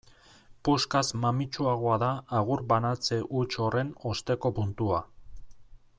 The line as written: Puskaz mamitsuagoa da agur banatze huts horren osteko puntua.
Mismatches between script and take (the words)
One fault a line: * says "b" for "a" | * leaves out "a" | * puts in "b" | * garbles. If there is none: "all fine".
all fine